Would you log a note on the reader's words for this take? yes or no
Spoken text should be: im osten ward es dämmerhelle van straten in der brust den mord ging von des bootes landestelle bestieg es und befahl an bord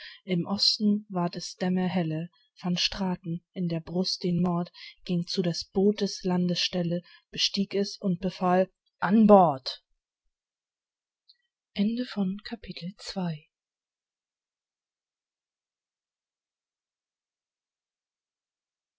yes